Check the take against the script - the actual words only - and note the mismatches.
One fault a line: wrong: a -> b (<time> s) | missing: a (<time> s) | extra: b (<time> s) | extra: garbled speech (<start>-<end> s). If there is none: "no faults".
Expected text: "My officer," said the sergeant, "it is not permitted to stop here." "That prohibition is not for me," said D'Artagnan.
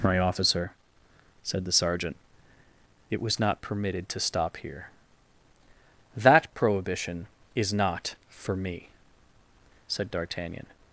wrong: is -> was (3.2 s)